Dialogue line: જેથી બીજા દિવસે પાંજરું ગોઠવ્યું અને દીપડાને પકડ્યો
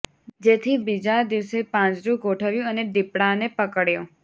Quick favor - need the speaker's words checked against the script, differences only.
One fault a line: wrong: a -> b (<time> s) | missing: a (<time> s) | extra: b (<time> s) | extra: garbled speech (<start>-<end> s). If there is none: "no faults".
no faults